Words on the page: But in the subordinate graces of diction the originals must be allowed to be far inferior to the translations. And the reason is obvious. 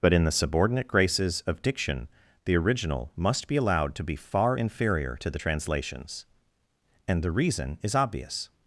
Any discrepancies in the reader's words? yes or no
yes